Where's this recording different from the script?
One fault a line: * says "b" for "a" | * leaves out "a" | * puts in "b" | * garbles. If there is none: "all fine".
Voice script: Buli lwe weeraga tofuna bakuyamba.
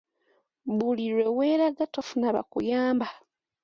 all fine